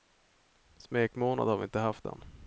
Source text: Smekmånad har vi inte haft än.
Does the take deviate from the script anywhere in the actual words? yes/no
no